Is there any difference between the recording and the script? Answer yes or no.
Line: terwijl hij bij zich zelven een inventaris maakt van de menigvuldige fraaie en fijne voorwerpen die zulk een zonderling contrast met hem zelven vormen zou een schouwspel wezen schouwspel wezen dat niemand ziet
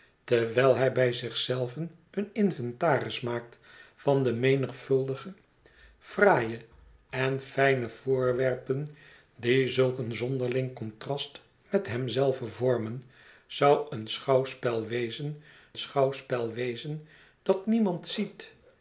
no